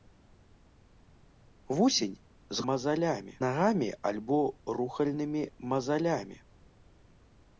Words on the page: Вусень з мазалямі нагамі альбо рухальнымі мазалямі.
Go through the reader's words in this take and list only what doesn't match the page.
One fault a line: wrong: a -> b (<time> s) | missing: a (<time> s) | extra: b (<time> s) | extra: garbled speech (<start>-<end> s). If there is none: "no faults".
no faults